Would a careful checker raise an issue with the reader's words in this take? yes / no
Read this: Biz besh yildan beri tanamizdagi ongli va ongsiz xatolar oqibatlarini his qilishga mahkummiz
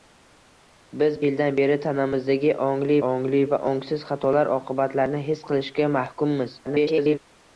yes